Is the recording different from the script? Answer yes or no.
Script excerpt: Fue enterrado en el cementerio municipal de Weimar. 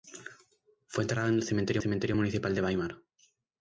yes